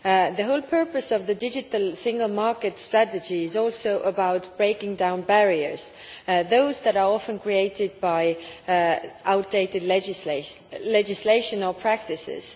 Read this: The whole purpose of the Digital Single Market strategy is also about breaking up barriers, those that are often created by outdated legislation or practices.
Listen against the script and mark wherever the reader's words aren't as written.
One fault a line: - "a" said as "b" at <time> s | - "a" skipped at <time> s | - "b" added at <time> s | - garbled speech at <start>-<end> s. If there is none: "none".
- "up" said as "down" at 4.9 s